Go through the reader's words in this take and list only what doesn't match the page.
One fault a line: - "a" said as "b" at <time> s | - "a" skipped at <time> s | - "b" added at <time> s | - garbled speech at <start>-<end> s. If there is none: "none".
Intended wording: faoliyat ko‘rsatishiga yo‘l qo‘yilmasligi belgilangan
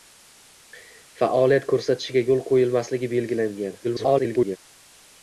- garbled speech at 3.8-4.6 s